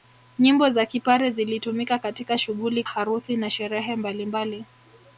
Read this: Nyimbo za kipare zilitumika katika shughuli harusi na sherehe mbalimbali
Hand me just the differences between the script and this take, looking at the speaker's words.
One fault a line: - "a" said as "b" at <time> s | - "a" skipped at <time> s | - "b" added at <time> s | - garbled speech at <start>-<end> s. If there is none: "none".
none